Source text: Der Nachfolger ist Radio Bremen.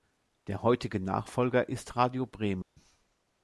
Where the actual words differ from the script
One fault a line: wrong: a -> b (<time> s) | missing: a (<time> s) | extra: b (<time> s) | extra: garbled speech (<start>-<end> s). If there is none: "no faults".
extra: heutige (0.6 s)